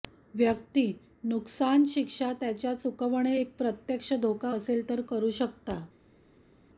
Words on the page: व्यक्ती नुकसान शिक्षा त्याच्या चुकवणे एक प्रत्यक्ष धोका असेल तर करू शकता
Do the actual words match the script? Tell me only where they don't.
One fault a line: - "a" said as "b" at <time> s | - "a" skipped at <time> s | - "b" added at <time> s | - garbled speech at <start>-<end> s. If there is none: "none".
none